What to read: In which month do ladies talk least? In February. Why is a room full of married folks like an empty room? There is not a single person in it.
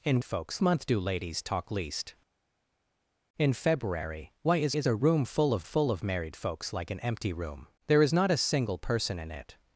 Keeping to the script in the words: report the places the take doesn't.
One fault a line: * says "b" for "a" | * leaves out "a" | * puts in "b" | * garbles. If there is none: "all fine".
* says "folks" for "which"
* puts in "is"
* puts in "full of"